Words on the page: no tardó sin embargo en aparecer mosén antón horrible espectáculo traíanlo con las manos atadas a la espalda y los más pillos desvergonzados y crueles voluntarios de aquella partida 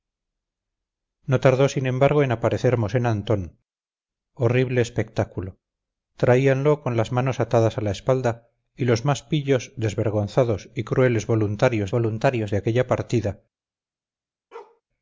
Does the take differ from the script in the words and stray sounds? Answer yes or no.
yes